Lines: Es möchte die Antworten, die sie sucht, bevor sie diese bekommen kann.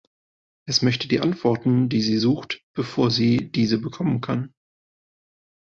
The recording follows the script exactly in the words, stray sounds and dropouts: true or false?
true